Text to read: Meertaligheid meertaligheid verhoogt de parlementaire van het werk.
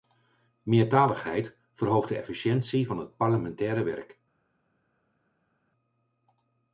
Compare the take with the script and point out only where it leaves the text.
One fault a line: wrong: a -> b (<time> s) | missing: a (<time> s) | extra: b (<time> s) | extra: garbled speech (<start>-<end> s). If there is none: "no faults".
missing: meertaligheid (1.6 s)
wrong: parlementaire -> efficiëntie (2.2 s)
extra: parlementaire (3.2 s)